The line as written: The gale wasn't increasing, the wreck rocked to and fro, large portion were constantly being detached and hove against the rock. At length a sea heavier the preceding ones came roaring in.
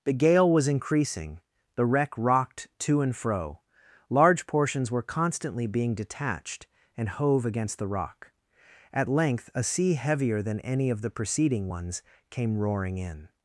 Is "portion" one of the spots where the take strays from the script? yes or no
yes